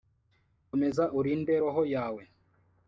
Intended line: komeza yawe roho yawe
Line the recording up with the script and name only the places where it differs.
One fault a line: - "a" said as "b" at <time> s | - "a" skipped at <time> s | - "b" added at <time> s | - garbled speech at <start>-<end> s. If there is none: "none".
- "yawe" said as "urinde" at 1.2 s